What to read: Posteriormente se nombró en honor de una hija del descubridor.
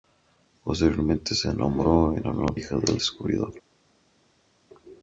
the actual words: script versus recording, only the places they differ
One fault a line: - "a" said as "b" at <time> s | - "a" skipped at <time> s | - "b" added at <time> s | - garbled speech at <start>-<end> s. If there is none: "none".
- "de una" skipped at 2.6 s